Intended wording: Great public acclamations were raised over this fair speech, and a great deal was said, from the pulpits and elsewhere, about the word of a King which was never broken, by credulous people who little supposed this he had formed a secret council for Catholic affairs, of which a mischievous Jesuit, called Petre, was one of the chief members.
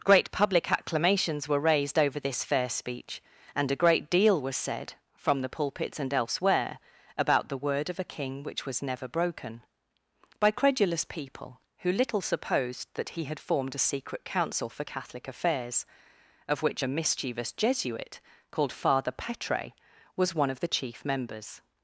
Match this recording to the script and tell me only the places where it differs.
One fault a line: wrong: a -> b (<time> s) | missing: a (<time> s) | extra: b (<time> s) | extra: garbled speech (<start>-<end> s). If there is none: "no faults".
wrong: this -> that (12.9 s)
extra: Father (18.7 s)